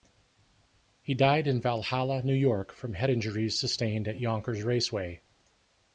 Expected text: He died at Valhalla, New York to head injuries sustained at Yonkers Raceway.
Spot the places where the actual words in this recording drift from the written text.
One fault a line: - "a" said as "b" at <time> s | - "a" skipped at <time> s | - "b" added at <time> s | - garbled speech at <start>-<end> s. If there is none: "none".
- "at" said as "in" at 1.4 s
- "to" said as "from" at 2.7 s